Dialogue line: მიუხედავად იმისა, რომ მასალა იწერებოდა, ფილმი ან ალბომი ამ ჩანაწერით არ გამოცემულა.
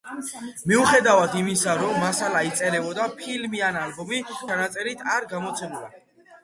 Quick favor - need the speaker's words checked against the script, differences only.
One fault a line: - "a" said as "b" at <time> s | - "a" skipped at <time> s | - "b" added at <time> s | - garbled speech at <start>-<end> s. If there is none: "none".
- "ამ" skipped at 4.2 s